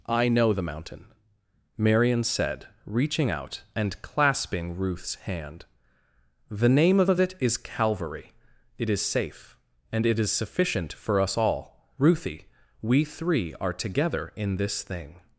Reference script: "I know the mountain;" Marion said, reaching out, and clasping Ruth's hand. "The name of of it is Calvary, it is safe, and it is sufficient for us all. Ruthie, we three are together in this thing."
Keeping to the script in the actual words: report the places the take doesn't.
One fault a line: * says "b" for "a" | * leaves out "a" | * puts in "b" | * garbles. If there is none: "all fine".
all fine